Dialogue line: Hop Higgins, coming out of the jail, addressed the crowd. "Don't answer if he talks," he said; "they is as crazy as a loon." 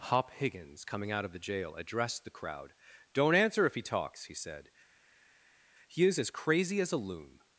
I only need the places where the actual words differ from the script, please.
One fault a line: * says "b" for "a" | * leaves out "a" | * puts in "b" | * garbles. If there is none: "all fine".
* says "he" for "they"